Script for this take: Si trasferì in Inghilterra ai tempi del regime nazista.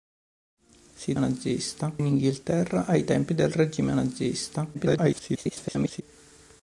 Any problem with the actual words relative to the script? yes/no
yes